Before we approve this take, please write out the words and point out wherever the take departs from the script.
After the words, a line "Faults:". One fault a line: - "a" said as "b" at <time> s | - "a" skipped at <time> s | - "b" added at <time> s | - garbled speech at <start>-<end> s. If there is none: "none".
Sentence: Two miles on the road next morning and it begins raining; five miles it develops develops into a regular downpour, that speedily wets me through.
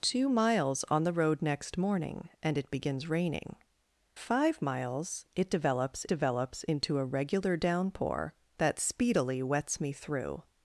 Two miles on the road next morning and it begins raining; five miles it develops develops into a regular downpour, that speedily wets me through.
Faults:
none